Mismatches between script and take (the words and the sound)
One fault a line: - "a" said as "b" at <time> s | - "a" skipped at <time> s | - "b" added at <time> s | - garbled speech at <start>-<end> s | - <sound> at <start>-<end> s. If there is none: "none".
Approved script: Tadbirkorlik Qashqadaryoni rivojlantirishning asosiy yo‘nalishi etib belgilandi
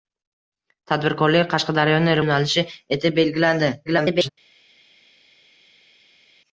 - "rivojlantirishning asosiy" skipped at 2.2 s
- garbled speech at 3.8-4.3 s